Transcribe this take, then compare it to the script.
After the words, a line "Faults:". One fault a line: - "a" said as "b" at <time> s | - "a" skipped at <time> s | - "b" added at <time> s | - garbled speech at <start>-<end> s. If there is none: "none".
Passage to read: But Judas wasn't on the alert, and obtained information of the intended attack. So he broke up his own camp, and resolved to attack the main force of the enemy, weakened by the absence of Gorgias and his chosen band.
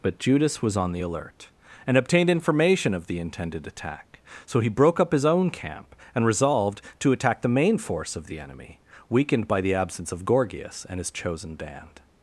But Judas was on the alert, and obtained information of the intended attack. So he broke up his own camp, and resolved to attack the main force of the enemy, weakened by the absence of Gorgias and his chosen band.
Faults:
- "wasn't" said as "was" at 0.6 s